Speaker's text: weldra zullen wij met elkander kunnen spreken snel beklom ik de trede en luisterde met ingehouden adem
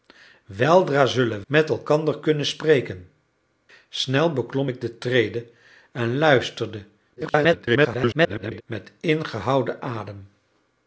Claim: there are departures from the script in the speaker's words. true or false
true